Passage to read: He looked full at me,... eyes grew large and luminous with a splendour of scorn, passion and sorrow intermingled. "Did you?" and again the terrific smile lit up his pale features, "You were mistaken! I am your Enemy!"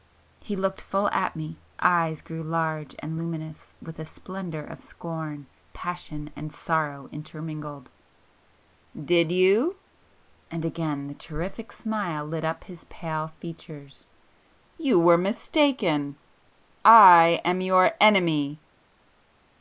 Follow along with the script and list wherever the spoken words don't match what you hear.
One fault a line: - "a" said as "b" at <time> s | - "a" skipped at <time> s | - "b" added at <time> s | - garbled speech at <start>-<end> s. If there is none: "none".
none